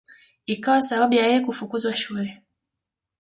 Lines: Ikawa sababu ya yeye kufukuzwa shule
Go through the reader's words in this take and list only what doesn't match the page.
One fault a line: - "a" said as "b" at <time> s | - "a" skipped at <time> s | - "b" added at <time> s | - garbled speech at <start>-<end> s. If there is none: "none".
none